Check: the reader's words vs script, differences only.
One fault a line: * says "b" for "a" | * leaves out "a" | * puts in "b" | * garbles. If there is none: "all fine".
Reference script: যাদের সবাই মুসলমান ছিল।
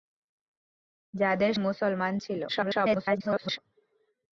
* leaves out "সবাই"
* garbles